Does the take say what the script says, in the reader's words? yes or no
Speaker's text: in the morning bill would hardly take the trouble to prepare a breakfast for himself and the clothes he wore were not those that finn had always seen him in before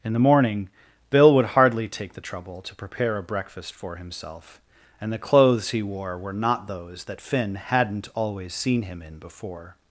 no